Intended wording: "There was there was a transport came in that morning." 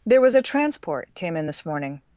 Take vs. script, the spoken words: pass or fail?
fail